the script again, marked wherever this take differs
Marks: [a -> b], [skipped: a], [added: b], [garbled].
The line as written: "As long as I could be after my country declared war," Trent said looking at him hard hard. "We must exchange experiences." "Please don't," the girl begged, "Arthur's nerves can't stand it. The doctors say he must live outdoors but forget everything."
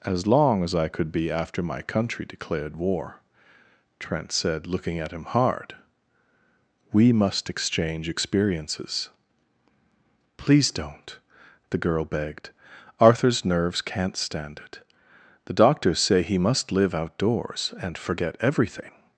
"As long as I could be after my country declared war," Trent said looking at him hard [skipped: hard.] "We must exchange experiences." "Please don't," the girl begged, "Arthur's nerves can't stand it. The doctors say he must live outdoors [but -> and] forget everything."